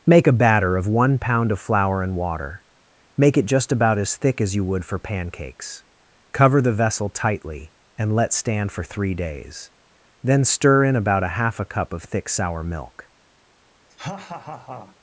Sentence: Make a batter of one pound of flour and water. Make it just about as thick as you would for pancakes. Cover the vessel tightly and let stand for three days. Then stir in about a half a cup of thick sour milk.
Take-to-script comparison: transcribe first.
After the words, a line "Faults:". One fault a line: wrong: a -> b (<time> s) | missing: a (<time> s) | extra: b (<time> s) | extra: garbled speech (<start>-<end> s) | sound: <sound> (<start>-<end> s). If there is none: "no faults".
Make a batter of one pound of flour and water. Make it just about as thick as you would for pancakes. Cover the vessel tightly and let stand for three days. Then stir in about a half a cup of thick sour milk.
Faults:
sound: laugh (13.9-15.0 s)